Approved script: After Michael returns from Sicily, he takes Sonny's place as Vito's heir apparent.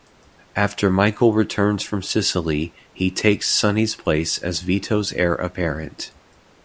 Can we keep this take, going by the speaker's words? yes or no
yes